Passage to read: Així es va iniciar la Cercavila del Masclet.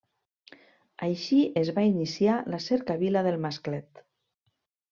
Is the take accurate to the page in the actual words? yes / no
yes